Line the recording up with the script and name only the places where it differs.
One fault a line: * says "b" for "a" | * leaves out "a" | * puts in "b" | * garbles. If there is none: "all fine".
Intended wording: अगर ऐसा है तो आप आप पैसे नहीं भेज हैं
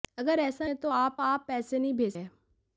all fine